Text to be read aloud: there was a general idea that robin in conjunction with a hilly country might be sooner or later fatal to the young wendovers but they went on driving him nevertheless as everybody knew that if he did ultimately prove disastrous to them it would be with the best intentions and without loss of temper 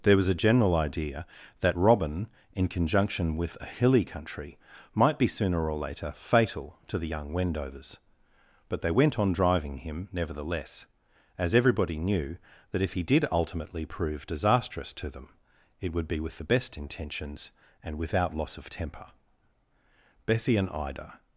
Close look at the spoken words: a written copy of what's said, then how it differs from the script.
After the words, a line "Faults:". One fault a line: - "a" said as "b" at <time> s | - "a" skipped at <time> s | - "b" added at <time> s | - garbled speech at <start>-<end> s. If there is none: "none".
there was a general idea that robin in conjunction with a hilly country might be sooner or later fatal to the young wendovers but they went on driving him nevertheless as everybody knew that if he did ultimately prove disastrous to them it would be with the best intentions and without loss of temper bessie and ida
Faults:
- "bessie and ida" added at 20.3 s